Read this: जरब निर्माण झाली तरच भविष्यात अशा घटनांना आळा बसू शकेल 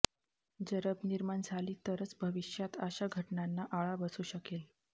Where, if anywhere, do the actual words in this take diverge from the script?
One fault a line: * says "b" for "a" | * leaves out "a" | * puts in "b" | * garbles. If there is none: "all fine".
all fine